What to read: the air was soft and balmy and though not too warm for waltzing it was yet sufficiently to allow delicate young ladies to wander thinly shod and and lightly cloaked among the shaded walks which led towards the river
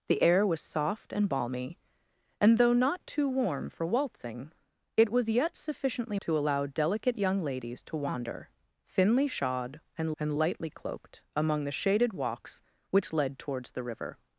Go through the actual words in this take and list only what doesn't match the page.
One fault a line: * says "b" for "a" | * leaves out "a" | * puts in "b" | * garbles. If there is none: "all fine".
all fine